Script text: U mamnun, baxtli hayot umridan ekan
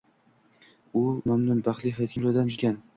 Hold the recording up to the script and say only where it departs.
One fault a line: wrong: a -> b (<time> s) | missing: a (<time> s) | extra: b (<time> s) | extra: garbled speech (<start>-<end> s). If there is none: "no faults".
no faults